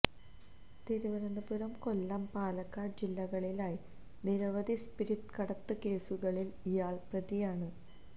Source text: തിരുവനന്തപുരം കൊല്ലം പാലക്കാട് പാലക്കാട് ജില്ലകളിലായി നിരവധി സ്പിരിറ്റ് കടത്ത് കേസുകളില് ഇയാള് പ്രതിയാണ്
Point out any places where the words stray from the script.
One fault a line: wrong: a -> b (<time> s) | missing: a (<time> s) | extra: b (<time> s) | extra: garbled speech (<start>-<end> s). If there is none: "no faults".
missing: പാലക്കാട് (3.0 s)